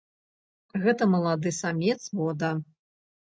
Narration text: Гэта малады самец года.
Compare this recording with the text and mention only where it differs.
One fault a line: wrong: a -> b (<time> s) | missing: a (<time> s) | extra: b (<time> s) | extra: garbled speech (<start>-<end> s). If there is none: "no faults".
no faults